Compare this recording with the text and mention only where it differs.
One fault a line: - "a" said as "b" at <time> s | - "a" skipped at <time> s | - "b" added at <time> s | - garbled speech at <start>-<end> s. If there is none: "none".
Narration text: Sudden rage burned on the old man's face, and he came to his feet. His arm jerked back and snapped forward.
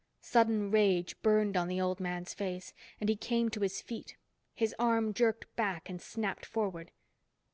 none